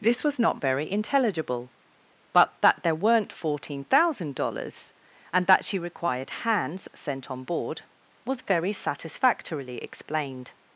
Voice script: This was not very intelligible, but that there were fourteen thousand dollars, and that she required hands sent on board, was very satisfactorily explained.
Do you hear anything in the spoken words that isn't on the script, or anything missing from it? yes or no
yes